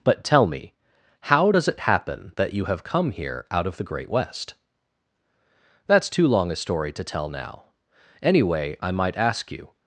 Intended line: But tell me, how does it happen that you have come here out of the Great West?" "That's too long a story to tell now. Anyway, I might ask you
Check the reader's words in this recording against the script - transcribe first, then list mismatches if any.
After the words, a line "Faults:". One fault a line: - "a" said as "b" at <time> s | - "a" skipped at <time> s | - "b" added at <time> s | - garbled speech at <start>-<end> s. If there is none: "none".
But tell me, how does it happen that you have come here out of the Great West?" "That's too long a story to tell now. Anyway, I might ask you
Faults:
none